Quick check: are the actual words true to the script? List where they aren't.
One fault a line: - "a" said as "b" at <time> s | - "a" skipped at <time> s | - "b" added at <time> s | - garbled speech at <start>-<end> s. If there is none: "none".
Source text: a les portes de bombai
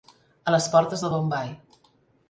none